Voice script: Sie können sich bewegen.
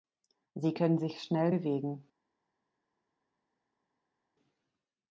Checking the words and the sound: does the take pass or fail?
fail